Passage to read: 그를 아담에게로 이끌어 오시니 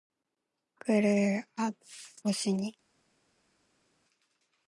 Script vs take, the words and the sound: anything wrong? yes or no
yes